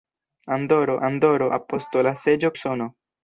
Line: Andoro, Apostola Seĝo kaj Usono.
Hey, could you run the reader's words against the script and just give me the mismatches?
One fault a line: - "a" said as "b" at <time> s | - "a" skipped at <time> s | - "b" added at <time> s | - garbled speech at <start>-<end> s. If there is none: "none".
- "andoro" added at 1.1 s
- "kaj" skipped at 2.6 s